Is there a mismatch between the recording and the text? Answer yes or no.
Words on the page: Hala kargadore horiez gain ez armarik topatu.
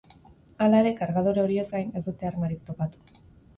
yes